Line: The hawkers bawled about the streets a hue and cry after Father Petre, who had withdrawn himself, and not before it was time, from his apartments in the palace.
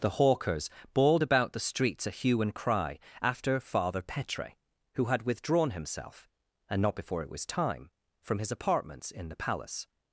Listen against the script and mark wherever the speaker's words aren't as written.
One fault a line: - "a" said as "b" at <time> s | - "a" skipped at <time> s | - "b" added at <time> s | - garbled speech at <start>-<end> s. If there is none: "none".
none